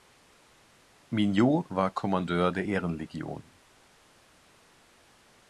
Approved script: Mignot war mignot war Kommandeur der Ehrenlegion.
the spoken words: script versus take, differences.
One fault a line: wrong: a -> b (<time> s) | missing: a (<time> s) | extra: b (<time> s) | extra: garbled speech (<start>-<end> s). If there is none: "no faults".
missing: mignot war (1.9 s)